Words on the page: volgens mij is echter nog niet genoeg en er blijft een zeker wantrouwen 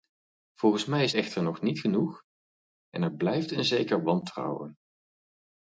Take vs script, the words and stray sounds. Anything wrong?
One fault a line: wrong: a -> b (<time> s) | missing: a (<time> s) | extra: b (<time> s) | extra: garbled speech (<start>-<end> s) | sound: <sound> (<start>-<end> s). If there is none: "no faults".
no faults